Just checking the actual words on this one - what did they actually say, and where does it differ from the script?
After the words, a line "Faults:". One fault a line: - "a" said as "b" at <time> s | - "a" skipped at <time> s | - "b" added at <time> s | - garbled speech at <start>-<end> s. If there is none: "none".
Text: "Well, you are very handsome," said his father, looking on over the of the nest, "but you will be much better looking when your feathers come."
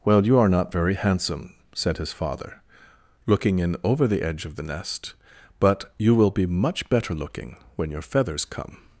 "Well, you are not very handsome," said his father, looking in over the edge of the nest, "but you will be much better looking when your feathers come."
Faults:
- "not" added at 0.5 s
- "on" said as "in" at 3.6 s
- "edge" added at 4.2 s